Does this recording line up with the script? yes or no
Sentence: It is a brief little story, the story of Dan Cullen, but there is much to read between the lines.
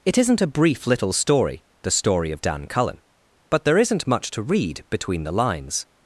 no